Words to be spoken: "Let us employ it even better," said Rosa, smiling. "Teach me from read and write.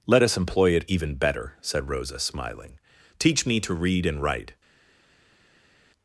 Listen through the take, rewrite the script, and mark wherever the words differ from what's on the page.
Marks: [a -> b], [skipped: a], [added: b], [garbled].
"Let us employ it even better," said Rosa, smiling. "Teach me [from -> to] read and write.